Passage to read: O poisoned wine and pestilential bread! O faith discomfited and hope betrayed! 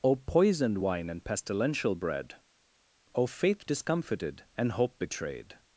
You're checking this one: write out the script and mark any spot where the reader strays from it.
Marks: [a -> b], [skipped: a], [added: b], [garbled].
O poisoned wine and pestilential bread! O faith discomfited and hope betrayed!